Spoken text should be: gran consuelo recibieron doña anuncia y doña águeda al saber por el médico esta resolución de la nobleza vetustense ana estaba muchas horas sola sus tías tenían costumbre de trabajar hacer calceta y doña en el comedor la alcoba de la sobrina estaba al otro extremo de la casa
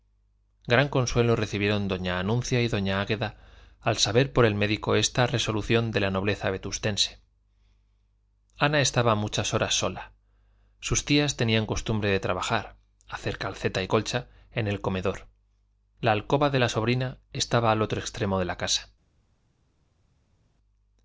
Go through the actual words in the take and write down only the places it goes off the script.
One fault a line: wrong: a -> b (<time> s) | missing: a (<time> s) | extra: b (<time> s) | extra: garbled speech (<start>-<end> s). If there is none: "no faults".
wrong: doña -> colcha (13.9 s)